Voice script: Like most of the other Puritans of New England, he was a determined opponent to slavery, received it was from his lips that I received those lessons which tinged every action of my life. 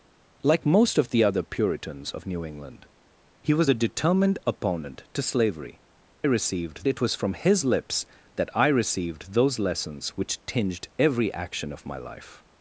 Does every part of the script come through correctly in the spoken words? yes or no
yes